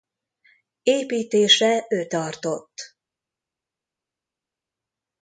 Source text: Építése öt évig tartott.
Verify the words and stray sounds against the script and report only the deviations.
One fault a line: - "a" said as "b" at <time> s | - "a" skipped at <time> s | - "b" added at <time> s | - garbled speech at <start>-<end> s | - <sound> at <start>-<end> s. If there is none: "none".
- "évig" skipped at 2.1 s